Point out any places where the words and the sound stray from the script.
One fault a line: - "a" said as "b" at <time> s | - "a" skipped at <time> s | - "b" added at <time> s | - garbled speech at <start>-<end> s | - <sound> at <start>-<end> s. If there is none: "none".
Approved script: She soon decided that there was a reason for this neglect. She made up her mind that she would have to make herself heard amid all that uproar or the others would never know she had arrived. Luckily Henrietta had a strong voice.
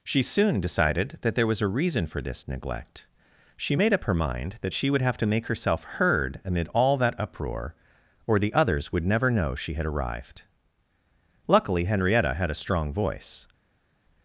none